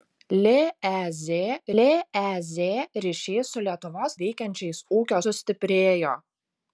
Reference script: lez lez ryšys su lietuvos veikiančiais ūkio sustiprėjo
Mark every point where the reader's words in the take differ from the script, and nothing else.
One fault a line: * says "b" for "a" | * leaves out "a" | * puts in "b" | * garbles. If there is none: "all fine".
all fine